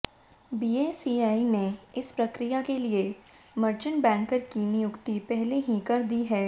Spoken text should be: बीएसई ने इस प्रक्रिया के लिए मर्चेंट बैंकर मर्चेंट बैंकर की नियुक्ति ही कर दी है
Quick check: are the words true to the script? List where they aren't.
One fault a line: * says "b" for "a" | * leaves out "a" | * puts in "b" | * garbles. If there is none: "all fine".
* leaves out "मर्चेंट बैंकर"
* puts in "पहले"